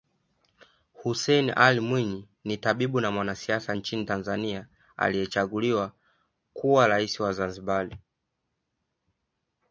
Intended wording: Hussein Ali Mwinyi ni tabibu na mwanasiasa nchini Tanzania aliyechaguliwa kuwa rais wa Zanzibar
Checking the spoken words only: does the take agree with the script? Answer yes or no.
yes